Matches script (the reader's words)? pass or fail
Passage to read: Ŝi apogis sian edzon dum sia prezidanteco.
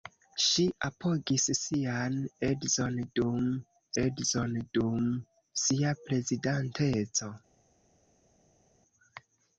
fail